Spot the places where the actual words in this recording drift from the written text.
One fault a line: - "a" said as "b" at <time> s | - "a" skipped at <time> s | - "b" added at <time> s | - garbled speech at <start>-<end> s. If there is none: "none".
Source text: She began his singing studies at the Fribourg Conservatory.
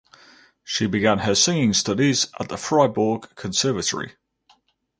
- "his" said as "her" at 1.2 s